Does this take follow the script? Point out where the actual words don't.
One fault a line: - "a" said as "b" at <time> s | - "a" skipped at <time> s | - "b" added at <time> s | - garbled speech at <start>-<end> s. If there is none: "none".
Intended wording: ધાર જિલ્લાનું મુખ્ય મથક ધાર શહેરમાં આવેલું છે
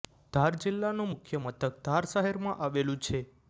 none